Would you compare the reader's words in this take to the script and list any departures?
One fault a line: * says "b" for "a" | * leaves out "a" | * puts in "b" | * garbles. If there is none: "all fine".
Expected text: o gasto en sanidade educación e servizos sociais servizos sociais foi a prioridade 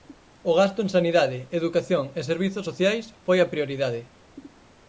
* leaves out "servizos sociais"